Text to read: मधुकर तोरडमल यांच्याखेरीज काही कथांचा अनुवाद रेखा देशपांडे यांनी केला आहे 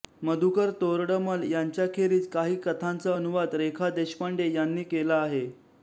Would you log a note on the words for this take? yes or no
no